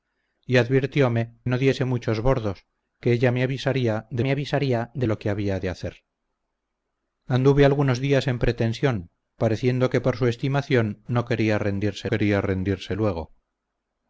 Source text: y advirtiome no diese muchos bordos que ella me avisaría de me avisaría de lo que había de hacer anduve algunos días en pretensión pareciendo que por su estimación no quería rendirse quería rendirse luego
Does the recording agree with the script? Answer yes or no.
yes